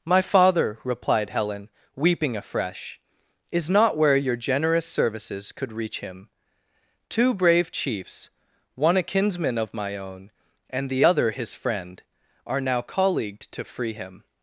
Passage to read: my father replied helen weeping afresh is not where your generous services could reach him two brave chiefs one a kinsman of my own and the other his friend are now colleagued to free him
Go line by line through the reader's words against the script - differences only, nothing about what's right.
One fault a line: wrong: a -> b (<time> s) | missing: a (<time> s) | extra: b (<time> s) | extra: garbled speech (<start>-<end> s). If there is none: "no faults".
no faults